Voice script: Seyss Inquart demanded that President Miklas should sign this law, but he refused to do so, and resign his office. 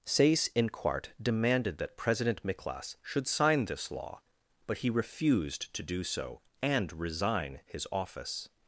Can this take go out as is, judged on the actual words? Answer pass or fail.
pass